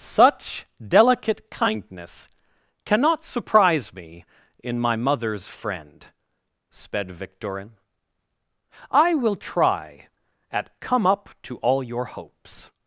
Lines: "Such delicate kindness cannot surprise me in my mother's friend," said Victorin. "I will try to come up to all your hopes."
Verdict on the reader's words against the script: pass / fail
fail